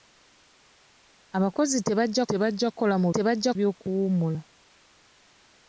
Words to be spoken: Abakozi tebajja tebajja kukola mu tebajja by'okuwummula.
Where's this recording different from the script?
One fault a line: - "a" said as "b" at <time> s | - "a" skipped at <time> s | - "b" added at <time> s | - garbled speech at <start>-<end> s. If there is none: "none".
none